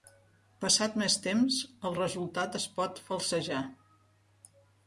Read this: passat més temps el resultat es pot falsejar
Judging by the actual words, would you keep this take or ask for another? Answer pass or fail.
pass